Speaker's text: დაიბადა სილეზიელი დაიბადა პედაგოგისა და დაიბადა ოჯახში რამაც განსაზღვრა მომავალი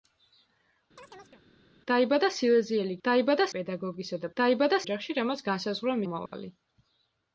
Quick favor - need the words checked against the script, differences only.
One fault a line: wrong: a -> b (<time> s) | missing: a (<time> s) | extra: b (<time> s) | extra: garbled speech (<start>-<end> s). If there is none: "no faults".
no faults